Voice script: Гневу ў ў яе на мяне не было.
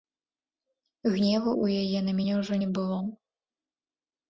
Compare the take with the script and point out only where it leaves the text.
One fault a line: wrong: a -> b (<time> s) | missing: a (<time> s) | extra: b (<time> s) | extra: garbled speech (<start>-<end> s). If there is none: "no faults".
missing: ў (1.9 s)
extra: ўжо (2.4 s)